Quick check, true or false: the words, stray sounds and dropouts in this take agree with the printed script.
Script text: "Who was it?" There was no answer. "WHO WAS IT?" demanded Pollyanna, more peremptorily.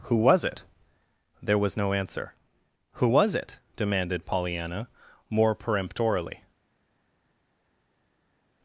true